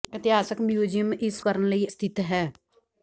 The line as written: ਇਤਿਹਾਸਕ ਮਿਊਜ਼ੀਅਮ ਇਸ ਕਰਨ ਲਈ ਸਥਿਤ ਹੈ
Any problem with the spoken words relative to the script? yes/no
no